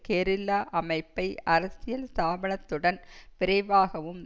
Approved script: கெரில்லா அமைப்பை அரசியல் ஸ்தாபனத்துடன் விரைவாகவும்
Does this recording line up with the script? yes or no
yes